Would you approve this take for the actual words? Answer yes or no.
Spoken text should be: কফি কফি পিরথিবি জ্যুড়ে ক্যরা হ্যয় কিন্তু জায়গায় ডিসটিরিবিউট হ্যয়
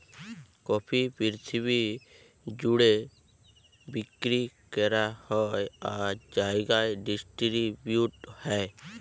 no